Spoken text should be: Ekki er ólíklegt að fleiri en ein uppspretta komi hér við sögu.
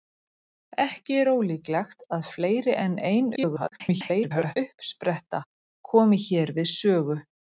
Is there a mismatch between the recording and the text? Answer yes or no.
yes